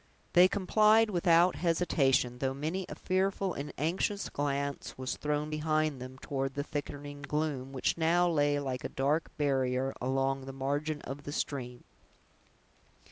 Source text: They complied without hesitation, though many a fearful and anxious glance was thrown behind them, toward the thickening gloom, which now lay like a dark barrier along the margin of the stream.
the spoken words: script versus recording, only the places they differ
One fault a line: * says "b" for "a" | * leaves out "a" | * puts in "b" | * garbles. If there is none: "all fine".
all fine